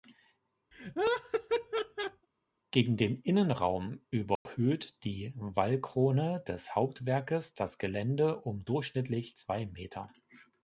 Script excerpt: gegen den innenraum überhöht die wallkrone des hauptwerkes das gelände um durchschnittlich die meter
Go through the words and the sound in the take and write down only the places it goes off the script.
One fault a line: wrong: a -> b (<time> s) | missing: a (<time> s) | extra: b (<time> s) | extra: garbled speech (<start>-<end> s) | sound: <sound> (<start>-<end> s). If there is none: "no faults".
sound: laugh (0.7-2.3 s)
sound: dropout (4.4-4.5 s)
wrong: die -> zwei (9.4 s)